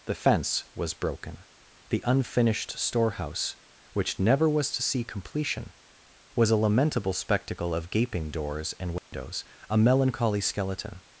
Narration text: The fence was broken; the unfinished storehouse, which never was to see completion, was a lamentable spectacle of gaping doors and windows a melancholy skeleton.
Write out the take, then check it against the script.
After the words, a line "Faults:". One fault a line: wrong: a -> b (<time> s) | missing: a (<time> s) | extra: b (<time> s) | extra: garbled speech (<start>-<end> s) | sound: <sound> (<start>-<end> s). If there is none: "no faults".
The fence was broken; the unfinished storehouse, which never was to see completion, was a lamentable spectacle of gaping doors and windows a melancholy skeleton.
Faults:
sound: dropout (9.0-9.1 s)